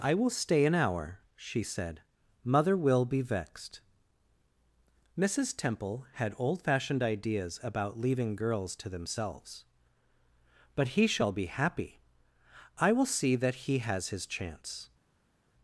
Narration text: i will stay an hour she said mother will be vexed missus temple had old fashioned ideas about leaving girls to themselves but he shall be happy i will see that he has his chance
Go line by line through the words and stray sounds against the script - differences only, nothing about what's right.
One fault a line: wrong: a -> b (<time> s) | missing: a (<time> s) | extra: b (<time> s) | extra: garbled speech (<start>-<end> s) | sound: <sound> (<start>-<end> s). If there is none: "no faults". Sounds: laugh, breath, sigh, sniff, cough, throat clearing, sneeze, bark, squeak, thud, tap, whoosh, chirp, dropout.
no faults